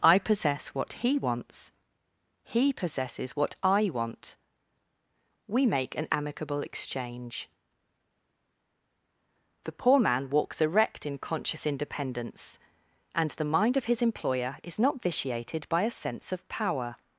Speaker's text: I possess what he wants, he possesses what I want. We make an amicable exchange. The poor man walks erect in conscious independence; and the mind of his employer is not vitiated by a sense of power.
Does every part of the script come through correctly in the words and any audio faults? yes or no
yes